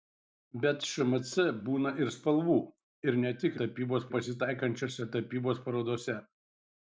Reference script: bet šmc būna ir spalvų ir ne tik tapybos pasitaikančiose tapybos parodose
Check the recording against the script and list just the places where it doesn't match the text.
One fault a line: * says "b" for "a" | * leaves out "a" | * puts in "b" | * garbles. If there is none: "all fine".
all fine